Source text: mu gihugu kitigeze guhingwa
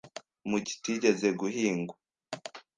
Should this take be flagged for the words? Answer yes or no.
yes